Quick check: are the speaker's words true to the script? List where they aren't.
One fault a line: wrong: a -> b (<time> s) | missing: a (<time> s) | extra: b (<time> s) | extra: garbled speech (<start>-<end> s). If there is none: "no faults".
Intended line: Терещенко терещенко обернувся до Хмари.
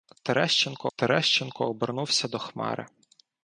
no faults